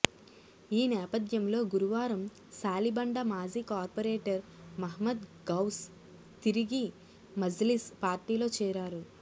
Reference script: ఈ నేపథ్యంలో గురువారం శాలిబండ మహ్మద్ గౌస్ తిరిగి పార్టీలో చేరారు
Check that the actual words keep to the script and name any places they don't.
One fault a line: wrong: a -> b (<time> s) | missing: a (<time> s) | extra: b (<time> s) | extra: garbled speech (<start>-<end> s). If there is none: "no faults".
extra: మాజీ కార్పొరేటర్ (3.3 s)
extra: మజ్లిస్ (7.3 s)